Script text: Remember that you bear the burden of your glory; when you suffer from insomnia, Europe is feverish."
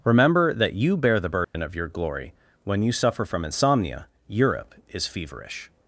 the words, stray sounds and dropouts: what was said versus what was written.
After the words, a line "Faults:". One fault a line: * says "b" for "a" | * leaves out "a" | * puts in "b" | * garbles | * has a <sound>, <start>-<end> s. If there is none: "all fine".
Remember that you bear the burden of your glory; when you suffer from insomnia, Europe is feverish."
Faults:
* has a dropout, 1.4-1.5 s